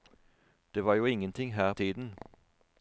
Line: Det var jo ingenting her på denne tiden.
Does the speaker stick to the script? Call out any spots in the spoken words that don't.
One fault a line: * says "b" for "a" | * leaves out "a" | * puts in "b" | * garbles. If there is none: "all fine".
* leaves out "på denne"